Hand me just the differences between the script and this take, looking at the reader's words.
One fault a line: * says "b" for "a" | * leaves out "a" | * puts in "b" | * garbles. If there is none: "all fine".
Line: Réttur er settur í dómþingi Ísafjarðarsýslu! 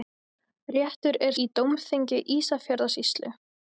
* leaves out "settur"